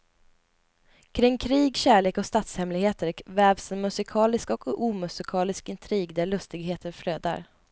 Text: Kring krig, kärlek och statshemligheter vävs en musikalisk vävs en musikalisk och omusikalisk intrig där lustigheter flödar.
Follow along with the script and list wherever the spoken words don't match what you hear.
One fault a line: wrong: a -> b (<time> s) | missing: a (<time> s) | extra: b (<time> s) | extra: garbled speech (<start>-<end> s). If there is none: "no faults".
missing: vävs en musikalisk (4.5 s)